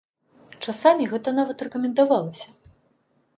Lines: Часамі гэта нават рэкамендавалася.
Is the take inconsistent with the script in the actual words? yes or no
no